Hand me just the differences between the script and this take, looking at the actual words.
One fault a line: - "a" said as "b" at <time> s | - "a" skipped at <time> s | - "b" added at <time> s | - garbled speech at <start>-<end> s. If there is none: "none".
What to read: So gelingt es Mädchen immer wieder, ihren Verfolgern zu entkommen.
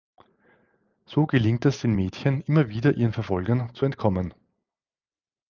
- "den" added at 1.8 s